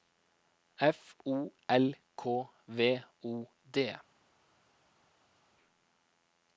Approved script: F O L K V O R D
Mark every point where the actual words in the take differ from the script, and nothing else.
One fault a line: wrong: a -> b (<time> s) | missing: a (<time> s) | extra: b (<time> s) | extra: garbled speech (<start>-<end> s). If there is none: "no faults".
missing: R (3.5 s)